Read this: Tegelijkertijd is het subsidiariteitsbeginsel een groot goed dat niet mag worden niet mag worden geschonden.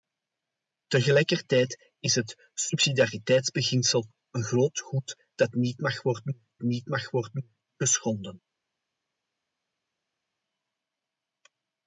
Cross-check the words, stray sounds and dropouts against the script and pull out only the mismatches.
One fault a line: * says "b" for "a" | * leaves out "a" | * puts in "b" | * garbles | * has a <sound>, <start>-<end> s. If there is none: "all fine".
all fine